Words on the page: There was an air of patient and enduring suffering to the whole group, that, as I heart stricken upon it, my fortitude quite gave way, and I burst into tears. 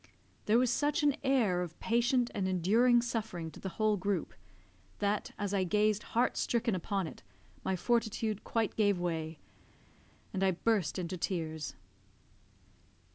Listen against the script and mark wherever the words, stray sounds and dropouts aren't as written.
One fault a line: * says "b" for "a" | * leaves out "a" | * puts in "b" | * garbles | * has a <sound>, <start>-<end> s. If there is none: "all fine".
* puts in "such"
* puts in "gazed"